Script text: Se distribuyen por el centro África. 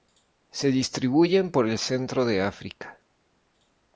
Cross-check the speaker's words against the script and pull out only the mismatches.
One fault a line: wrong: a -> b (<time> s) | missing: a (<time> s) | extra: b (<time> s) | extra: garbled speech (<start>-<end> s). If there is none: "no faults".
extra: de (2.2 s)